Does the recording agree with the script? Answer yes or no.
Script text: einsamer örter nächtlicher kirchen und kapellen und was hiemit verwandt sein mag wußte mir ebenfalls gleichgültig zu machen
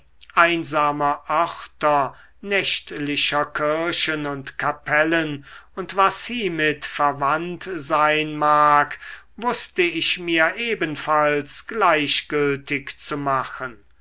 no